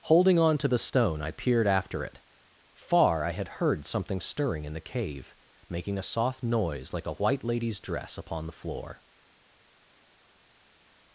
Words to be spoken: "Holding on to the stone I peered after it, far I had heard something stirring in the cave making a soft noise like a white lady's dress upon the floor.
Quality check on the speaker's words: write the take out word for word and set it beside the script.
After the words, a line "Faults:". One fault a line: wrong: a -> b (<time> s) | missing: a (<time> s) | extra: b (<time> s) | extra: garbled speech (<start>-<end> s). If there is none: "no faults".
"Holding on to the stone I peered after it, far I had heard something stirring in the cave making a soft noise like a white lady's dress upon the floor.
Faults:
no faults